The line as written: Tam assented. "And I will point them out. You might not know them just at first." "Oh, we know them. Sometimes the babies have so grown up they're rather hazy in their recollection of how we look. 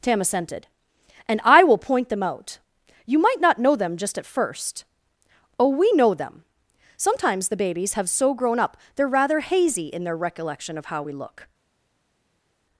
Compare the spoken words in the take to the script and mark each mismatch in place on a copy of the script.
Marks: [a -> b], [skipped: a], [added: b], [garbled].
Tam assented. "And I will point them out. You might not know them just at first." "Oh, we know them. Sometimes the babies have so grown up they're rather hazy in their recollection of how we look.